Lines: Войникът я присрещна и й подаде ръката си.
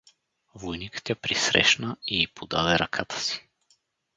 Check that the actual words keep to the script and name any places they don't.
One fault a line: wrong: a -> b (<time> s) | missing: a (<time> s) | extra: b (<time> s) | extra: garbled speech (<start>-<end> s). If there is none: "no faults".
no faults